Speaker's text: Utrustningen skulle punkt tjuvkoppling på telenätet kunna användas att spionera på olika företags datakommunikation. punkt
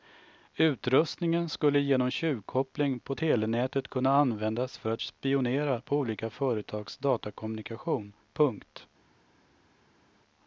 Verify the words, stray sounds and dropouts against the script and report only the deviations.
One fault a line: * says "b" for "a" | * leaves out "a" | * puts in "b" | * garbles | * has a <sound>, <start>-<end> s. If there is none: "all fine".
* says "genom" for "punkt"
* puts in "för"